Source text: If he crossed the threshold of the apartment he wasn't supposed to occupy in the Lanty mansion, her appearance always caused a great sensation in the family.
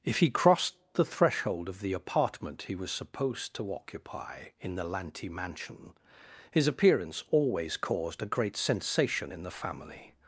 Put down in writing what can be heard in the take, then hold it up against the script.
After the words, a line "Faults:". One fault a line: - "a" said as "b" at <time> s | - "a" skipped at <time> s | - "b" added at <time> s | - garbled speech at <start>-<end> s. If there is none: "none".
If he crossed the threshold of the apartment he was supposed to occupy in the Lanty mansion, his appearance always caused a great sensation in the family.
Faults:
- "wasn't" said as "was" at 2.8 s
- "her" said as "his" at 6.5 s